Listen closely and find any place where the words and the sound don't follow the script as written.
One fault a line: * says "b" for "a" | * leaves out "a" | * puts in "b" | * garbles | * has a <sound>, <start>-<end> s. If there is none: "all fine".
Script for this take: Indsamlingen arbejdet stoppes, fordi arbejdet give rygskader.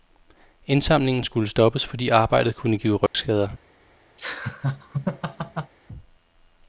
* says "skulle" for "arbejdet"
* puts in "kunne"
* has a dropout, 3.1-3.1 s
* has a laugh, 4.2-5.7 s